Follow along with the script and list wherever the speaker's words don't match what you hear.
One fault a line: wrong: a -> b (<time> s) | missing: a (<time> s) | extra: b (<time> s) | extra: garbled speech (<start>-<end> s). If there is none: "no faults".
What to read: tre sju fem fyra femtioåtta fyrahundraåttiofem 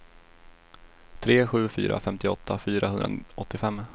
missing: fem (1.7 s)